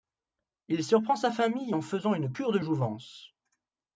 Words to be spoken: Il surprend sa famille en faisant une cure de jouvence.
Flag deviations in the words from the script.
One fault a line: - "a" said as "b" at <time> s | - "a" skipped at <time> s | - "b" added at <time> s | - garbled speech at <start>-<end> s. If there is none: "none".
none